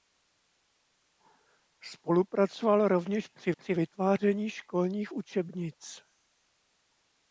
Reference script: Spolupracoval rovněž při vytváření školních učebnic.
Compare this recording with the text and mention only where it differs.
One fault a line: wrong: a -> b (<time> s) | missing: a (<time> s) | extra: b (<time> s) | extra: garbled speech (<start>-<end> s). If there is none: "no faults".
extra: při (3.5 s)